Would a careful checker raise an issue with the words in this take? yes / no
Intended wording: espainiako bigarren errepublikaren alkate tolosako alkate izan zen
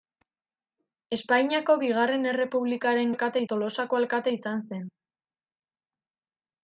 no